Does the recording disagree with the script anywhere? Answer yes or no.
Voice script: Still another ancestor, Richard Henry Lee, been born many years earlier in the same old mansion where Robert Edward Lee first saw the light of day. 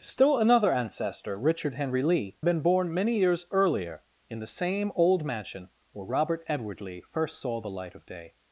no